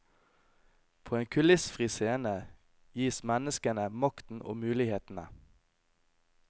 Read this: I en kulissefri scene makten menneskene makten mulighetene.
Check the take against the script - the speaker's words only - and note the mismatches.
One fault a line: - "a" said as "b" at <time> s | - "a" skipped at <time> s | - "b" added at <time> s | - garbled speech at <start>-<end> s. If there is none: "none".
- "I" said as "På" at 1.0 s
- "makten" said as "gis" at 3.0 s
- "og" added at 4.4 s